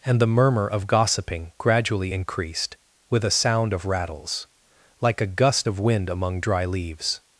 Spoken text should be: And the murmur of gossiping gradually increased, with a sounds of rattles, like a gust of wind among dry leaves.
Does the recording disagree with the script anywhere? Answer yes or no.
yes